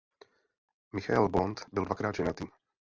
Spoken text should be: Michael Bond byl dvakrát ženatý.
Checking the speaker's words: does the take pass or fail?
pass